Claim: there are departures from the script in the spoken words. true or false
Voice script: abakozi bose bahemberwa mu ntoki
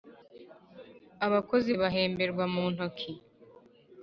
true